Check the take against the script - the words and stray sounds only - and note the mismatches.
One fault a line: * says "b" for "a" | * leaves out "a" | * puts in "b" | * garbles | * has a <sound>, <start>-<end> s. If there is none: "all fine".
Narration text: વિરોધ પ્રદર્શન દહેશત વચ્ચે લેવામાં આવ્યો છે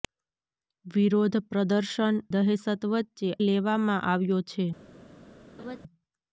* has a laugh, 5.6-5.8 s